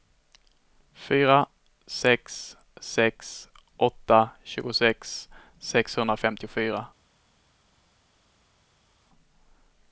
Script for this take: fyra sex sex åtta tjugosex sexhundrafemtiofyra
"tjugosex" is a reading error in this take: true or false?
false